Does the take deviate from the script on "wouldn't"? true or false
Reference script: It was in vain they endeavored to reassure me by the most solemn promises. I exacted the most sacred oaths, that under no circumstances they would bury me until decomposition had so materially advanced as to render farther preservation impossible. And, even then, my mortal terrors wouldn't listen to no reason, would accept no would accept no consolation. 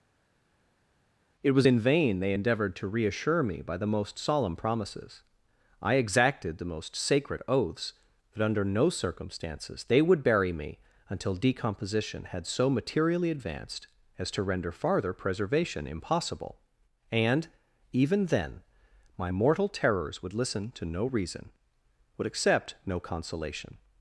true